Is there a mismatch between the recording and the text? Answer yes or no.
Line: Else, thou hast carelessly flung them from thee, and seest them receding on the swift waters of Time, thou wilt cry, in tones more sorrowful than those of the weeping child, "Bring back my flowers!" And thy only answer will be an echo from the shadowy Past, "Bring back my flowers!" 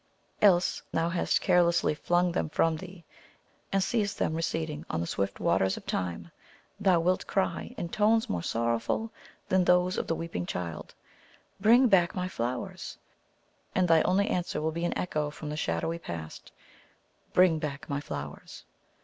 no